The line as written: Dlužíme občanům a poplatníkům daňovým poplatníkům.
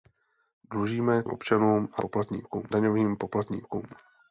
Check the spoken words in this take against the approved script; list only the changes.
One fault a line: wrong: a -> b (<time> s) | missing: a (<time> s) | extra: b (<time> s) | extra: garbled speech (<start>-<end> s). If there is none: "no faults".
no faults